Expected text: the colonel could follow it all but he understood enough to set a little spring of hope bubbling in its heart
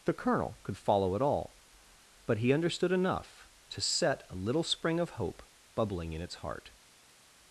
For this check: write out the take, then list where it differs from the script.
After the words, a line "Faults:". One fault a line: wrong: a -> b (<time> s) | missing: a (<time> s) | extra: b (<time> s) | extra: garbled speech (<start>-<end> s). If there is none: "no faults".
the colonel could follow it all but he understood enough to set a little spring of hope bubbling in its heart
Faults:
no faults